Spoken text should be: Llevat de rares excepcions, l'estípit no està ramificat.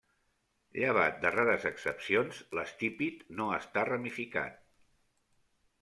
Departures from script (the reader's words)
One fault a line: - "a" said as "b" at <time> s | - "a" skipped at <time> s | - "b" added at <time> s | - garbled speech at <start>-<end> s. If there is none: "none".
none